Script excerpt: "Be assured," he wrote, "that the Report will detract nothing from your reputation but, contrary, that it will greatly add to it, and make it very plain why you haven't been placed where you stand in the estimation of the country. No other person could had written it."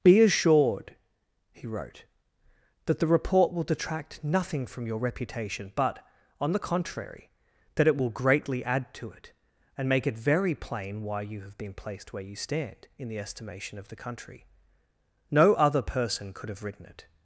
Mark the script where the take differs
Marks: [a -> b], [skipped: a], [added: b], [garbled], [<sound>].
"Be assured," he wrote, "that the Report will detract nothing from your reputation but, [added: on the] contrary, that it will greatly add to it, and make it very plain why you [haven't -> have] been placed where you stand in the estimation of the country. No other person could [had -> have] written it."